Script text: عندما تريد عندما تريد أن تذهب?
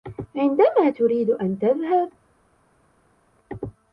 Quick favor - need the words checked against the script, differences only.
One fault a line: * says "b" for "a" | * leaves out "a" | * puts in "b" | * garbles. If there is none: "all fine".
* leaves out "عندما تريد"